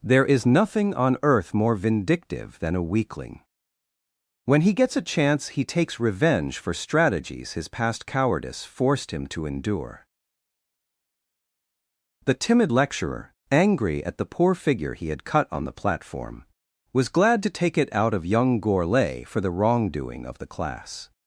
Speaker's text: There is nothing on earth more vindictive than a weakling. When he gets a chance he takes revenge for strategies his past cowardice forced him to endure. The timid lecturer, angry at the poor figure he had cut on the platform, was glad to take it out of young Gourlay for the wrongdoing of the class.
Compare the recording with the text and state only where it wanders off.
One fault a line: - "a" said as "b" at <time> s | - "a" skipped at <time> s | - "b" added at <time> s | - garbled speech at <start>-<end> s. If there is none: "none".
none